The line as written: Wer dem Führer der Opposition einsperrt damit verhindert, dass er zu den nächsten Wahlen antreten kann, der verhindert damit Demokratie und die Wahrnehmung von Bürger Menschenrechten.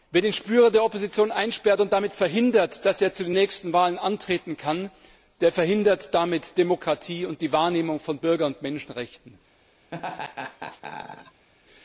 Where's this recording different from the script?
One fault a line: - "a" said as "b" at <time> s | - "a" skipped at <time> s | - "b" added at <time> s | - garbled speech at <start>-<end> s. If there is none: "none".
- "dem" said as "den" at 0.2 s
- "und" added at 1.8 s
- "und" added at 8.5 s